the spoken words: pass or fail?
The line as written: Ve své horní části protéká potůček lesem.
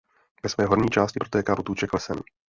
pass